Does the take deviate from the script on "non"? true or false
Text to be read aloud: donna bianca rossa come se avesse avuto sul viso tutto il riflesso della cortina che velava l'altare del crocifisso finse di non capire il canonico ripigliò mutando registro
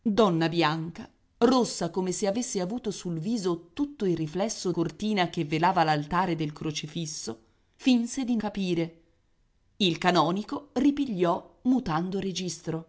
true